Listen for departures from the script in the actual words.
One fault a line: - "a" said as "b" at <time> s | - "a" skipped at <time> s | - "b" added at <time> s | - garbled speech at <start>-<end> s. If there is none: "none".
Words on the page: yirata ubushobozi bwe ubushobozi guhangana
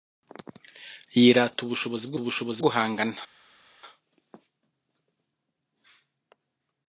none